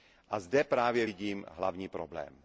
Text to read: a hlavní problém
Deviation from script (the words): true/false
true